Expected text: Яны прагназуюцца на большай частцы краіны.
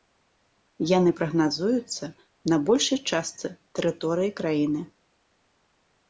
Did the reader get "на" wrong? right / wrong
right